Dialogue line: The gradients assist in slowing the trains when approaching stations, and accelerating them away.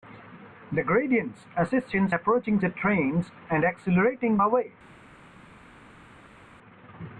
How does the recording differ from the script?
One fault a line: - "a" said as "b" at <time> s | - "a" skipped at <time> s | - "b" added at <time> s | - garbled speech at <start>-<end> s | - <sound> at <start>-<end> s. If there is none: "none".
- "slowing" said as "approaching" at 2.1 s
- "when approaching stations" skipped at 3.3 s
- "them" skipped at 4.4 s